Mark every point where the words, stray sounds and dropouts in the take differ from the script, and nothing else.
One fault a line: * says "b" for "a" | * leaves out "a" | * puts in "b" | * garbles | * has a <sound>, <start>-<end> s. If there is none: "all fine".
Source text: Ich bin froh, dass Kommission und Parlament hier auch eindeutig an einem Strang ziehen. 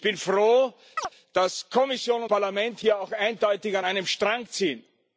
* has a chirp, 1.0-1.1 s
* leaves out "und"